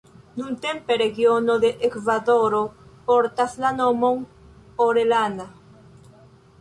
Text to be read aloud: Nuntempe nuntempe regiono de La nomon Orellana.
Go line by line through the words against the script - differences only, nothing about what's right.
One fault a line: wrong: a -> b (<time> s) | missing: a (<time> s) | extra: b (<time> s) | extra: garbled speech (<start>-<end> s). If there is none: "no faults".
missing: nuntempe (0.9 s)
extra: Ekvadoro portas (1.9 s)